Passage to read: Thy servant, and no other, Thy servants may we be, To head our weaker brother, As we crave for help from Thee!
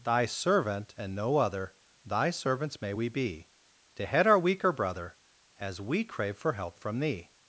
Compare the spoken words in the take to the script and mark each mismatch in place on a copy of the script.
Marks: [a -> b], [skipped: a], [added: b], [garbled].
Thy servant, and no other, Thy servants may we be, To head our weaker brother, As we crave for help from Thee!